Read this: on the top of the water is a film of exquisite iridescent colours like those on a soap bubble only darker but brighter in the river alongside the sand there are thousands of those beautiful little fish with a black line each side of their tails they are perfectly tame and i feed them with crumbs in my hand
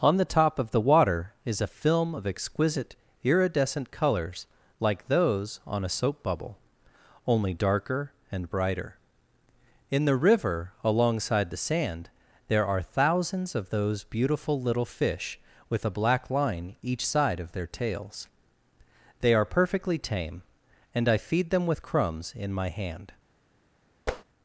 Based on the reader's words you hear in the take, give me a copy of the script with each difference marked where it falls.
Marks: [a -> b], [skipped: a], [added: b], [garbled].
on the top of the water is a film of exquisite iridescent colours like those on a soap bubble only darker [but -> and] brighter in the river alongside the sand there are thousands of those beautiful little fish with a black line each side of their tails they are perfectly tame and i feed them with crumbs in my hand